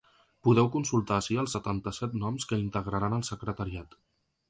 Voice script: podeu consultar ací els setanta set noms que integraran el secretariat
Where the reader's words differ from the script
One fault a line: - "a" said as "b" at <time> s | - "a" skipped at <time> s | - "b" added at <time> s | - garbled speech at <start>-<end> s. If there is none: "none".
none